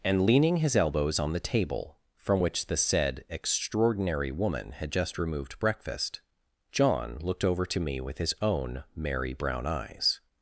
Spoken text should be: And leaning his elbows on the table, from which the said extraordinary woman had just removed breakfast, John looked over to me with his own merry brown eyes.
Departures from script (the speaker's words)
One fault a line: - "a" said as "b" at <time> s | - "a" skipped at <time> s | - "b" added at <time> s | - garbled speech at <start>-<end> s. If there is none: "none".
none